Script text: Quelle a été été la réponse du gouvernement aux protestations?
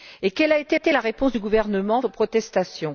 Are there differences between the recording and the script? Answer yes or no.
no